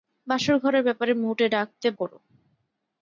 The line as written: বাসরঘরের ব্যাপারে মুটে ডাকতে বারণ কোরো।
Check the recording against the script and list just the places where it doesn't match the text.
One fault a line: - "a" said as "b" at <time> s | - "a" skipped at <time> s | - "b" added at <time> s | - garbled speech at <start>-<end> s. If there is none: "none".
- "বারণ" skipped at 1.9 s